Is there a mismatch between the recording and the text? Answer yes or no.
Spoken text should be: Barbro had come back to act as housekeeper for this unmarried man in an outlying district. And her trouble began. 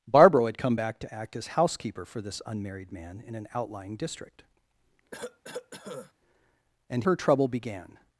no